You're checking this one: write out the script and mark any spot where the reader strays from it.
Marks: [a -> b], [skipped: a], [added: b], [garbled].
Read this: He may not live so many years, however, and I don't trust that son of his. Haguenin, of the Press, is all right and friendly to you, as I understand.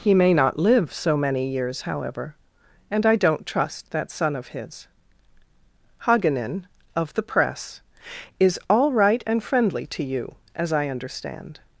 He may not live so many years, however, and I don't trust that son of his. Haguenin, of the Press, is all right and friendly to you, as I understand.